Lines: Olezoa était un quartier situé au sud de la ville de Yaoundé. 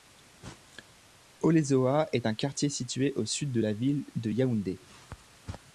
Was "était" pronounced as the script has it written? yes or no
no